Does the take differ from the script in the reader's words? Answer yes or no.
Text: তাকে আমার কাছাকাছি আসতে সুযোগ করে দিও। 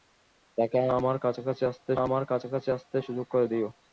yes